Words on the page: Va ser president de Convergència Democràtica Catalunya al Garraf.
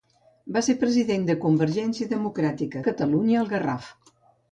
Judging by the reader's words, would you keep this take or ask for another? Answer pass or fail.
pass